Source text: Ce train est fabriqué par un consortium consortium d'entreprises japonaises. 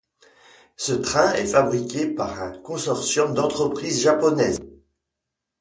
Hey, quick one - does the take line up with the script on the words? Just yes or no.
no